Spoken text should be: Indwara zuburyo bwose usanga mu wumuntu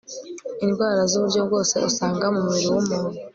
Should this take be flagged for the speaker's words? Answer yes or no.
yes